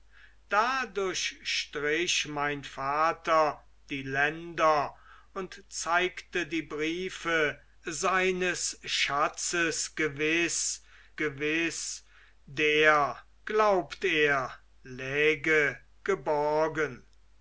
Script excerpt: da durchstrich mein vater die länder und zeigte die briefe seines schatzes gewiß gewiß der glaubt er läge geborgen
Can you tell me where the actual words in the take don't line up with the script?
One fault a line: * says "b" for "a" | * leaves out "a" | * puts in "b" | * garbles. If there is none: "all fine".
all fine